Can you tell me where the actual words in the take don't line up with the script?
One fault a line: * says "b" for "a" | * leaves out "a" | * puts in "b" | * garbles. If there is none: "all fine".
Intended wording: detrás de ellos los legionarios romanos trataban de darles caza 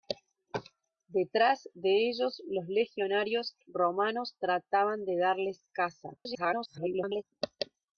* garbles